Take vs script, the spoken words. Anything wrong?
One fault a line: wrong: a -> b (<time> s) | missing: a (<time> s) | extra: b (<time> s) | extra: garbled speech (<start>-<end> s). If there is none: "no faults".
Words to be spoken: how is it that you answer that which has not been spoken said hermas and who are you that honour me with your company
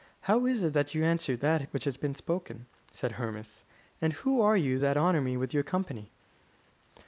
missing: not (2.0 s)